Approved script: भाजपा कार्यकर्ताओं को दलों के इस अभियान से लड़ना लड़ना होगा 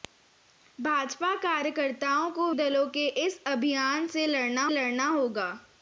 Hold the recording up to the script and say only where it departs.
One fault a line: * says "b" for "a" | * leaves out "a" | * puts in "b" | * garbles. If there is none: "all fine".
all fine